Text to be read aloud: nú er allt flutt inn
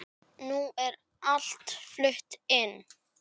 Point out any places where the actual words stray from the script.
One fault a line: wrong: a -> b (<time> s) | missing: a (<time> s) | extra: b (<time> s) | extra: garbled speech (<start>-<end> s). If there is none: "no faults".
no faults